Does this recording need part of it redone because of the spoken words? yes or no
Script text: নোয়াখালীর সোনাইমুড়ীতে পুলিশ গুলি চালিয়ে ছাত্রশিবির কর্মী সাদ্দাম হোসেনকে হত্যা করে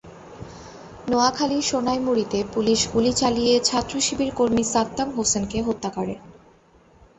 no